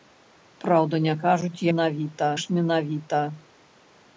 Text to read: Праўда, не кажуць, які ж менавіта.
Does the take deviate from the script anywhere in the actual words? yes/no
yes